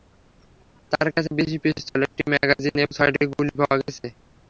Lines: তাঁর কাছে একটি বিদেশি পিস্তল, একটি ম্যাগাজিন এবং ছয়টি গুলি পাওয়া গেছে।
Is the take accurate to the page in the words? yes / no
no